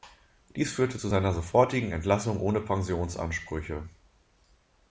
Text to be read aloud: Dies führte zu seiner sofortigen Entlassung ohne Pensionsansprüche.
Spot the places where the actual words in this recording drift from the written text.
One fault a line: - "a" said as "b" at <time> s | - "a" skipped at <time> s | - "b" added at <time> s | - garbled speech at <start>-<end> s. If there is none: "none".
none